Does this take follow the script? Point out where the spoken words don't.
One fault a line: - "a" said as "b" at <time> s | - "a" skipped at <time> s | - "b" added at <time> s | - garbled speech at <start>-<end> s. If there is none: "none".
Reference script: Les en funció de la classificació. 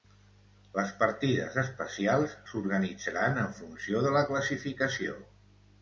- "partides especials s'organitzaran" added at 1.0 s